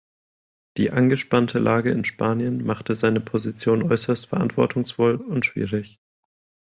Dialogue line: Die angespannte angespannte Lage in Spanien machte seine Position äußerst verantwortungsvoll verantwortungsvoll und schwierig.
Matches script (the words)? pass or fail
fail